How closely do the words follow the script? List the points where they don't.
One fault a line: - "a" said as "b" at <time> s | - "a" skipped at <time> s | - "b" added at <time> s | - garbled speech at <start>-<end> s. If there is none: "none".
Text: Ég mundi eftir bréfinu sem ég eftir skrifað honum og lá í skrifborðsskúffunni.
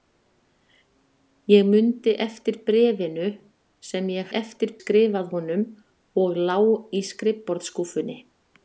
none